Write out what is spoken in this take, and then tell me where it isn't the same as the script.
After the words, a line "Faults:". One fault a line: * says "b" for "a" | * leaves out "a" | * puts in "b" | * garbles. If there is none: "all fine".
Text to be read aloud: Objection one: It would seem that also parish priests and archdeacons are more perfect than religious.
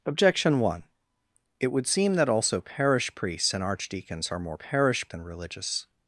Objection one: It would seem that also parish priests and archdeacons are more parish than religious.
Faults:
* says "parish" for "perfect"